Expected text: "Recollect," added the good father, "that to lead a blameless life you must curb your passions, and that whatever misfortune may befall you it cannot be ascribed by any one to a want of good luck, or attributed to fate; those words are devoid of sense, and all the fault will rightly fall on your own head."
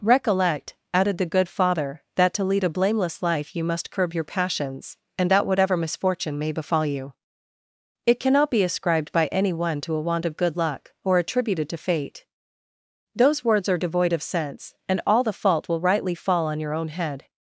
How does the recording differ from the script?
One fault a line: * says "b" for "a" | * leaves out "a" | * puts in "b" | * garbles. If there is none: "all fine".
all fine